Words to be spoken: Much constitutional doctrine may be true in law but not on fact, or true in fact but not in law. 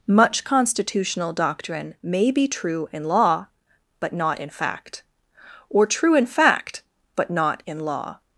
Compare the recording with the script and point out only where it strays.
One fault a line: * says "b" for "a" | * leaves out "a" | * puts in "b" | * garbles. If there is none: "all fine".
* says "in" for "on"